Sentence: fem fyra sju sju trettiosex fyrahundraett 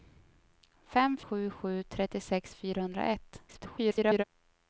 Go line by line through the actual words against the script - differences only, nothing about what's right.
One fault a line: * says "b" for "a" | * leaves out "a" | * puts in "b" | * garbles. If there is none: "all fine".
* leaves out "fyra"
* garbles